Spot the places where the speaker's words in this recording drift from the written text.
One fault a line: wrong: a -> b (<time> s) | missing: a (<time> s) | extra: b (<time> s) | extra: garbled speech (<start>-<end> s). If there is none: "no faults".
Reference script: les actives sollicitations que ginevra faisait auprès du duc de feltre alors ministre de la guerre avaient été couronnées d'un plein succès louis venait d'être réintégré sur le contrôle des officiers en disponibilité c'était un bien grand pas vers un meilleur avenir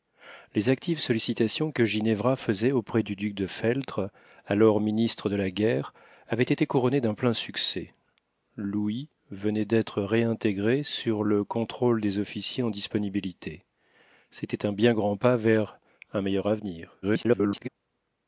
extra: garbled speech (17.0-17.7 s)